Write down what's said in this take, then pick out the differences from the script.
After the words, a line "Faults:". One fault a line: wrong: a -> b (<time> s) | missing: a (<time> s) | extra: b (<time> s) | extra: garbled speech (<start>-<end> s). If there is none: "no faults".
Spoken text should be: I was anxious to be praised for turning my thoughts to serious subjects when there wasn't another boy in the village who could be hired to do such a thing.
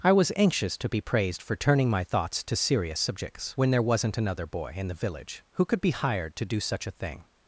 I was anxious to be praised for turning my thoughts to serious subjects when there wasn't another boy in the village who could be hired to do such a thing.
Faults:
no faults